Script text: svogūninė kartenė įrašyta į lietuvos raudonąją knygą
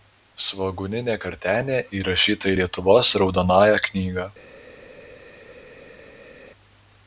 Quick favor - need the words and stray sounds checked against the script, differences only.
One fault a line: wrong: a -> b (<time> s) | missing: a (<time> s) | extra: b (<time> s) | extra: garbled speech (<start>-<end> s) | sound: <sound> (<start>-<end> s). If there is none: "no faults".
no faults